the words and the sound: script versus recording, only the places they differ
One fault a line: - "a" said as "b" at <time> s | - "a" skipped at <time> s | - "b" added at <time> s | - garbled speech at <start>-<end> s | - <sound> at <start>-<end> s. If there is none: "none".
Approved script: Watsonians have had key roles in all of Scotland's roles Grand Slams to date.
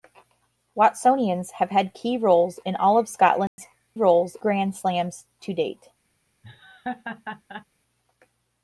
- dropout at 3.5-3.6 s
- laugh at 6.4-7.7 s